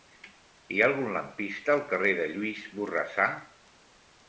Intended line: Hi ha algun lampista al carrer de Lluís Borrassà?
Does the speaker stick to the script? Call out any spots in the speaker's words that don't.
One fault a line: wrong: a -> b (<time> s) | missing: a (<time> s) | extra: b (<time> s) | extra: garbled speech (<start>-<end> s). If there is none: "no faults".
no faults